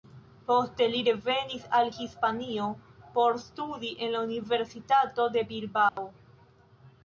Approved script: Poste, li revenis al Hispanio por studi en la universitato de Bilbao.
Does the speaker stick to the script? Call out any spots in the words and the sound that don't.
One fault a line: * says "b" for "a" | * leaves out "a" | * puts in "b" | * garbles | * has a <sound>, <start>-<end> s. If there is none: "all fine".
* has a dropout, 5.9-6.0 s